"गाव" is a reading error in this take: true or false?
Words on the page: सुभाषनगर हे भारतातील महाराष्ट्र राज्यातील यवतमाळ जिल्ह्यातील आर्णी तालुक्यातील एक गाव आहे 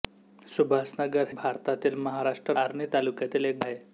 true